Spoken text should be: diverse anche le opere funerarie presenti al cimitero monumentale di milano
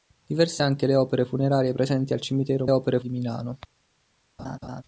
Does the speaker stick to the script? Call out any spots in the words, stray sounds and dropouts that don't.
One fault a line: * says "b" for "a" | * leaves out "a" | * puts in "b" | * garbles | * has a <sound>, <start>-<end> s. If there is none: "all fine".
* says "opere" for "monumentale"
* has a laugh, 4.4-4.8 s